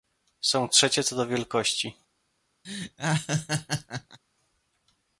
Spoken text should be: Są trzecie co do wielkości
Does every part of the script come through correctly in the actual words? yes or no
yes